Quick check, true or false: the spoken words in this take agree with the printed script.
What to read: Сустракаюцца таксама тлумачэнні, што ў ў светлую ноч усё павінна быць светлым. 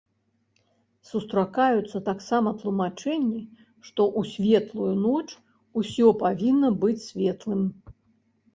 false